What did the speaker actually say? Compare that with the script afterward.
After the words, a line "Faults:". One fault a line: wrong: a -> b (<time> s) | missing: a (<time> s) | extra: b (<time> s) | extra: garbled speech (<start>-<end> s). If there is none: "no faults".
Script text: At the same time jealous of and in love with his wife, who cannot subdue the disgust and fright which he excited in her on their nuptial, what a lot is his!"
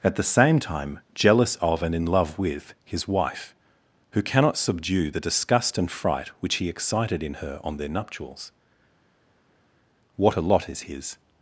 At the same time jealous of and in love with his wife, who cannot subdue the disgust and fright which he excited in her on their nuptials, what a lot is his!"
Faults:
wrong: nuptial -> nuptials (7.9 s)